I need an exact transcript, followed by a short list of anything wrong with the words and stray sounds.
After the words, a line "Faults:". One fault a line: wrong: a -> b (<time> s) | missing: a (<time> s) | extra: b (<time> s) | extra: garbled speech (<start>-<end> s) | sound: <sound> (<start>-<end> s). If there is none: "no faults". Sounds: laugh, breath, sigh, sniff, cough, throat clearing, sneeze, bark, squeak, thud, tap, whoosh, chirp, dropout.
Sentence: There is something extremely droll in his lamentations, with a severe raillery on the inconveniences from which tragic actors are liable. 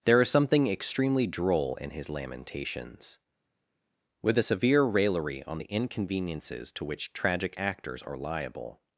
There is something extremely droll in his lamentations, with a severe raillery on the inconveniences to which tragic actors are liable.
Faults:
wrong: from -> to (6.7 s)